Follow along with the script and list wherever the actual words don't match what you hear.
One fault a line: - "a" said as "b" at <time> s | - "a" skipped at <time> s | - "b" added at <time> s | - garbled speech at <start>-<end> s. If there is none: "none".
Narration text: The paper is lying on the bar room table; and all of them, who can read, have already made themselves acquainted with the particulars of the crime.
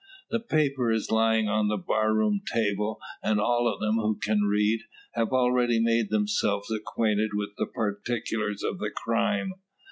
none